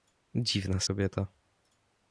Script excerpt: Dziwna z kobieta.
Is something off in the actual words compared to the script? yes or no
no